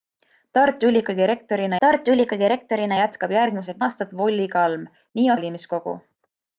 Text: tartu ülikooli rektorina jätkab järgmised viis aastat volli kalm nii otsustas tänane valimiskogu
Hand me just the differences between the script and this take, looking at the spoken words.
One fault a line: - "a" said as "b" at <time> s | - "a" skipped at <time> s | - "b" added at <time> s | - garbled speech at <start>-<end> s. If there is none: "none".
- "tartu ülikooli rektorina" added at 1.8 s
- "viis" skipped at 3.8 s
- "otsustas tänane" skipped at 5.3 s